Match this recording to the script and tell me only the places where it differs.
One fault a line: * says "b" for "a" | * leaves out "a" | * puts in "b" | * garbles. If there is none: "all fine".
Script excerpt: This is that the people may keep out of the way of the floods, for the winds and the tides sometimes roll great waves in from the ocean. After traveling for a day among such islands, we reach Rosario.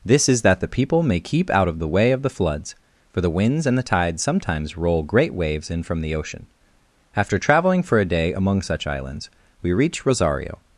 all fine